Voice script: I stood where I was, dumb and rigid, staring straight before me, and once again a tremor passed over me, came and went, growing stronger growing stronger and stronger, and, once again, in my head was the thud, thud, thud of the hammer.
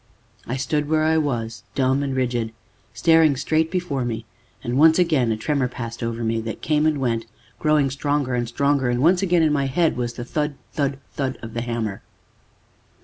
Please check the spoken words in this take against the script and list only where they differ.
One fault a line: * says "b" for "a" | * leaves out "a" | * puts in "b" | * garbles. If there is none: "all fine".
* puts in "that"
* leaves out "growing stronger"